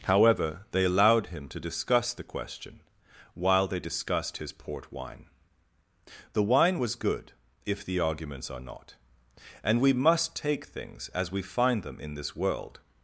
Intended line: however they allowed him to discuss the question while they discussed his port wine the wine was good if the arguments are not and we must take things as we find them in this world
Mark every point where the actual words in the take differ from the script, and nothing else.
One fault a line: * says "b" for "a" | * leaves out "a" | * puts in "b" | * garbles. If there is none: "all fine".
all fine